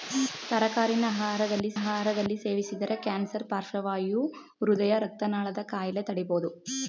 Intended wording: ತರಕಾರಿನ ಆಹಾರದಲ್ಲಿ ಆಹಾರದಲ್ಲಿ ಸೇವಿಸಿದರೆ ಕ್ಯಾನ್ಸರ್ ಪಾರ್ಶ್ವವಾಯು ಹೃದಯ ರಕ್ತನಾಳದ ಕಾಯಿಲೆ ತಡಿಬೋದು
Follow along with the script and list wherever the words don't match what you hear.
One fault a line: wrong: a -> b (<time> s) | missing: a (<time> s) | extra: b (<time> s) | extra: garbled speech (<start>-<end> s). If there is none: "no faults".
no faults